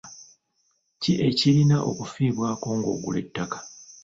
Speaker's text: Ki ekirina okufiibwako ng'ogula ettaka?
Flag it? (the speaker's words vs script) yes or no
no